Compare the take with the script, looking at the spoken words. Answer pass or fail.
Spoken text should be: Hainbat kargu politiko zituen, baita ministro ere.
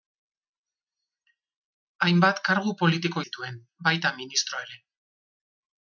pass